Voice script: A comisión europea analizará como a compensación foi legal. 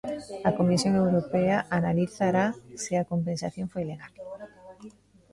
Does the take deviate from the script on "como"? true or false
true